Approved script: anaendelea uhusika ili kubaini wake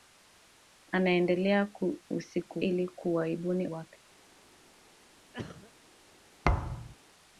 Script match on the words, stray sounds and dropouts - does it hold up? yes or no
no